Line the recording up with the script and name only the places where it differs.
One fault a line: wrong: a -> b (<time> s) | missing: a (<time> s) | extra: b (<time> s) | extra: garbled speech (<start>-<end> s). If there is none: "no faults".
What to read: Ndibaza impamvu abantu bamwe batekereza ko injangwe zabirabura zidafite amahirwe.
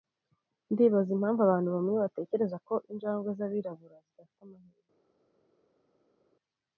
no faults